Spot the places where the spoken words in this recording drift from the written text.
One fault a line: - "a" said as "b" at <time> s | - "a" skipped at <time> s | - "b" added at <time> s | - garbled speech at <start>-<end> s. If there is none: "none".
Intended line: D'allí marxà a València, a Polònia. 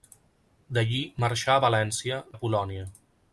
none